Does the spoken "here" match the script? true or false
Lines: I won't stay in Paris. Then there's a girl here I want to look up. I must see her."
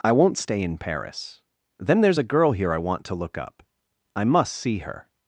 true